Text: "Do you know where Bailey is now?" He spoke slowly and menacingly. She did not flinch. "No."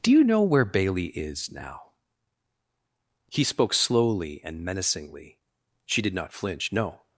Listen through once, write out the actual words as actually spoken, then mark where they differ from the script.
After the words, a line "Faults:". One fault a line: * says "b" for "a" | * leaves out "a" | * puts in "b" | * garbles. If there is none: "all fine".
"Do you know where Bailey is now?" He spoke slowly and menacingly. She did not flinch. "No."
Faults:
all fine